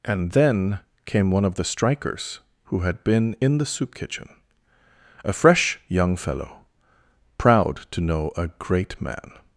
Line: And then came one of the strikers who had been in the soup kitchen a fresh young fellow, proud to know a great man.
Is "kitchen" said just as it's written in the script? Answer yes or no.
yes